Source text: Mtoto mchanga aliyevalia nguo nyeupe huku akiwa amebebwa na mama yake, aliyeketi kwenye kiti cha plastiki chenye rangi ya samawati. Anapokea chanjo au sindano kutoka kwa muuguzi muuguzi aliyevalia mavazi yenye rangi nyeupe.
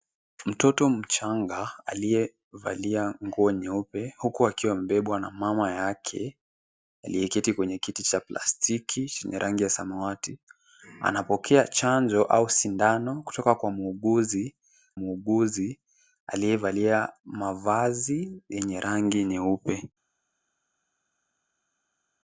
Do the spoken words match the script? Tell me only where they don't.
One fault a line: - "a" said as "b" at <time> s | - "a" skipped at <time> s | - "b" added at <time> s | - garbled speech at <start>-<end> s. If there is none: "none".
none